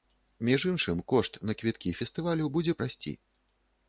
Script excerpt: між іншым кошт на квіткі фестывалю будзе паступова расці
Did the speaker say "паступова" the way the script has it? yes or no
no